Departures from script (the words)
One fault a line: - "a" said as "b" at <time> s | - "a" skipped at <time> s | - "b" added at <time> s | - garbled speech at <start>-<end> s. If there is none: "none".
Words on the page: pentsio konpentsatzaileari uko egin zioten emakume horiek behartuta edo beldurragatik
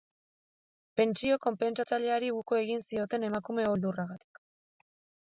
- "horiek behartuta edo" skipped at 3.7 s